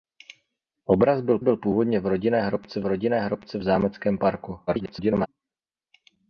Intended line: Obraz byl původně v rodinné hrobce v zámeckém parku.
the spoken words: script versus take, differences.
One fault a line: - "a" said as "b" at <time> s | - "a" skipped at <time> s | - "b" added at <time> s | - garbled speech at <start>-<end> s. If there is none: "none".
- "byl" added at 1.4 s
- "rodinné hrobce" added at 2.9 s
- garbled speech at 4.7-5.3 s